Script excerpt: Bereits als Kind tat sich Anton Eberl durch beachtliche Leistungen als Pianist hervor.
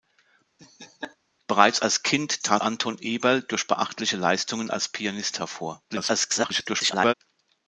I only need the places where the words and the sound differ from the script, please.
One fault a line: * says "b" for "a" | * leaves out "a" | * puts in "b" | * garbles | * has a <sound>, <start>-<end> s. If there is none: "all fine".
* has a laugh, 0.6-1.2 s
* leaves out "sich"
* garbles